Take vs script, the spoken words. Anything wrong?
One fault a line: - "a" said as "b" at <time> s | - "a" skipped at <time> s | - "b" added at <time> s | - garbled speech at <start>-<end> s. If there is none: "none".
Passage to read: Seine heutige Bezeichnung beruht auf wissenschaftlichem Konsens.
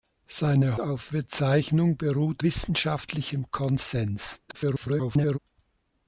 - "heutige" said as "auf" at 0.8 s
- "auf" skipped at 2.4 s
- garbled speech at 4.5-5.4 s